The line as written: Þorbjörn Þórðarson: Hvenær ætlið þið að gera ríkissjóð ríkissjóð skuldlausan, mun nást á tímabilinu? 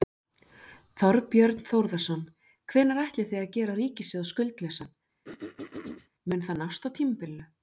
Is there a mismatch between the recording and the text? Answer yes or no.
yes